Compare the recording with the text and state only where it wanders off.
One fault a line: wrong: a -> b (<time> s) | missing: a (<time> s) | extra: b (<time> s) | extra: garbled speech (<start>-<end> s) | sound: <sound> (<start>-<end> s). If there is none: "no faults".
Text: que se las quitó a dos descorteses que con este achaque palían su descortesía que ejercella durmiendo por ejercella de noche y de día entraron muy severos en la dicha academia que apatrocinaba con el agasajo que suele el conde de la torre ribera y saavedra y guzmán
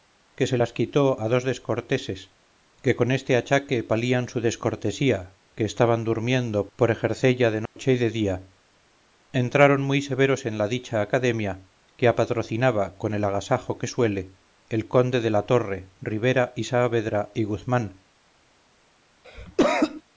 wrong: ejercella -> estaban (5.7 s)
sound: dropout (7.7-7.8 s)
sound: cough (19.2-20.0 s)